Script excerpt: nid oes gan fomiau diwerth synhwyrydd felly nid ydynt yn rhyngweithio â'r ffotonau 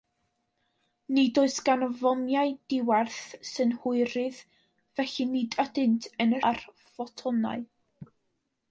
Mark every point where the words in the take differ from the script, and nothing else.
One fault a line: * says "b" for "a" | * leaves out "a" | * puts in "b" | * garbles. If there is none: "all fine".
* leaves out "rhyngweithio"